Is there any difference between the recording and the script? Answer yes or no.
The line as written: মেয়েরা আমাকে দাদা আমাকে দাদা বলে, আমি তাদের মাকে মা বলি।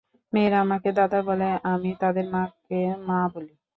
yes